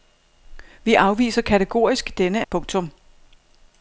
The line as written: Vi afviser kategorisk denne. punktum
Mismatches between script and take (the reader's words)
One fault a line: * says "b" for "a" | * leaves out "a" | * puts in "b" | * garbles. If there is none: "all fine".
all fine